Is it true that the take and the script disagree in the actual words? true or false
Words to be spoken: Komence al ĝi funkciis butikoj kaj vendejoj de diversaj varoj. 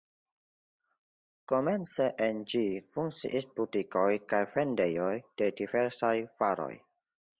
true